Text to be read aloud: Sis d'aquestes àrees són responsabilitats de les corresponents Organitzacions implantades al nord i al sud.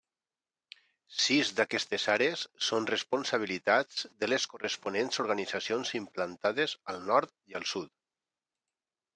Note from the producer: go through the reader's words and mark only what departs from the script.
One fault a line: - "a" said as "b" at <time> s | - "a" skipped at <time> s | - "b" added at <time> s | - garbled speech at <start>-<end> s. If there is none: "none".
none